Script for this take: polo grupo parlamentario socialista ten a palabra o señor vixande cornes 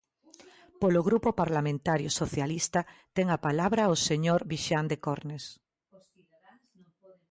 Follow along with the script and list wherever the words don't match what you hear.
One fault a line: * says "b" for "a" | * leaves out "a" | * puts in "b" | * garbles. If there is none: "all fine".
all fine